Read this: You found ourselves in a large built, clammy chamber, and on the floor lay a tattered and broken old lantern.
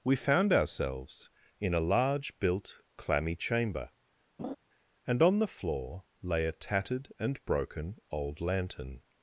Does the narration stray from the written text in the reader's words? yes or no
yes